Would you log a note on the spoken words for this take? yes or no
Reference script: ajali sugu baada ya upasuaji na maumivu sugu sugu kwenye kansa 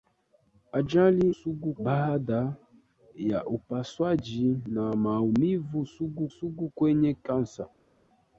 no